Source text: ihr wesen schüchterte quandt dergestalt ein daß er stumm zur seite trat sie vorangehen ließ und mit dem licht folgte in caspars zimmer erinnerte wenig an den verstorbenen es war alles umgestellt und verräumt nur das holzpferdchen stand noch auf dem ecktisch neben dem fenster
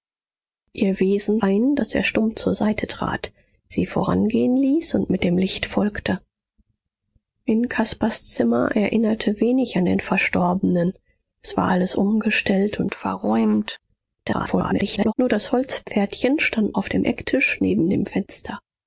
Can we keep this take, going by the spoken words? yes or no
no